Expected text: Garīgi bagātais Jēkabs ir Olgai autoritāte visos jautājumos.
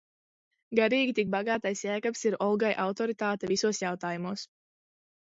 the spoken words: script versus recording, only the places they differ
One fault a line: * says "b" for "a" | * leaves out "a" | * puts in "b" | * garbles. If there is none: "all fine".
* puts in "tik"